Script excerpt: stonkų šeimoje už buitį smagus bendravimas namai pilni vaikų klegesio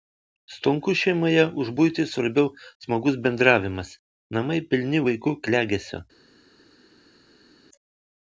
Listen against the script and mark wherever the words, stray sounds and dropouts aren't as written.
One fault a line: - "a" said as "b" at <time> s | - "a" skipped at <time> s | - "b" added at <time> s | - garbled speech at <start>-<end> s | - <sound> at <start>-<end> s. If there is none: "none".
- "svarbiau" added at 2.1 s